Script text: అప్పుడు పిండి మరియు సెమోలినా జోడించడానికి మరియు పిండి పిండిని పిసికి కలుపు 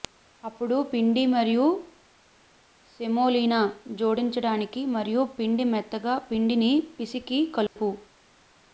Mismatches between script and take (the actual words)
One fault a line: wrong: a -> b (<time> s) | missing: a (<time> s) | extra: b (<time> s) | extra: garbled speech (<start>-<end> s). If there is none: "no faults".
extra: మెత్తగా (5.7 s)